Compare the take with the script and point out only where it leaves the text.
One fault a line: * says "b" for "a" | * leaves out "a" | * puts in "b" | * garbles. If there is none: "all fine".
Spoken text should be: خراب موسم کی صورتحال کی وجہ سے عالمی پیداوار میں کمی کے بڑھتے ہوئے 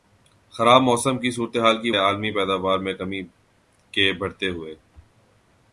* leaves out "وجہ سے"